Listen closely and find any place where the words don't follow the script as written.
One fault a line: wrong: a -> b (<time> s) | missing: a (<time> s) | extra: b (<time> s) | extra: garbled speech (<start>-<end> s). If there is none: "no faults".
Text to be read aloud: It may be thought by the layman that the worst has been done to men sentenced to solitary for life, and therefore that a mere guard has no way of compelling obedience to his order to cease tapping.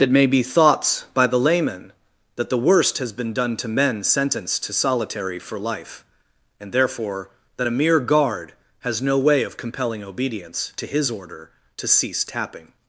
wrong: thought -> thoughts (0.4 s)